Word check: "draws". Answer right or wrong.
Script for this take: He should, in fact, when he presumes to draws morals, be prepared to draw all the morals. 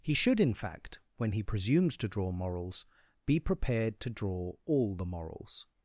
wrong